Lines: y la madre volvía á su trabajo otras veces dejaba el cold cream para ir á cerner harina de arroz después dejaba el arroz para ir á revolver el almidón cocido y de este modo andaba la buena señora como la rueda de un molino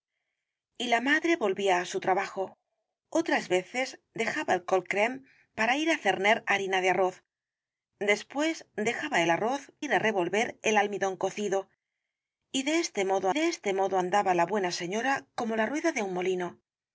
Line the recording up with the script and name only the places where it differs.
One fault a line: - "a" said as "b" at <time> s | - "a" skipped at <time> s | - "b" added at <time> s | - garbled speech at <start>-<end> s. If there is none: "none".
- "para" skipped at 9.6 s
- "de este modo" added at 13.3 s